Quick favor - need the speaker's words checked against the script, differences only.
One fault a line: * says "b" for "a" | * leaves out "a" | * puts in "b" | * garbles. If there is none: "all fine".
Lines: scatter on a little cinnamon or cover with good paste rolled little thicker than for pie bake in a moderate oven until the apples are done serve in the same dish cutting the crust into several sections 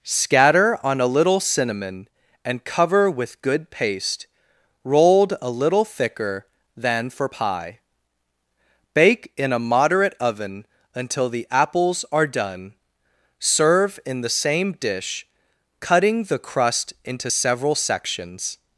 * says "and" for "or"
* puts in "a"